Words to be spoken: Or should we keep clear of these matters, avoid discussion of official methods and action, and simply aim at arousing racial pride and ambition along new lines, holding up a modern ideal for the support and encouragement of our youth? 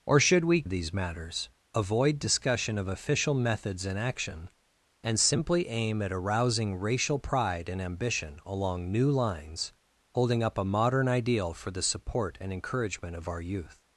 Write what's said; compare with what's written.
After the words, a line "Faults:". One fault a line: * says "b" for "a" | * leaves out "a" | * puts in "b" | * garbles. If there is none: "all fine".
Or should we of these matters, avoid discussion of official methods and action, and simply aim at arousing racial pride and ambition along new lines, holding up a modern ideal for the support and encouragement of our youth?
Faults:
* leaves out "keep clear"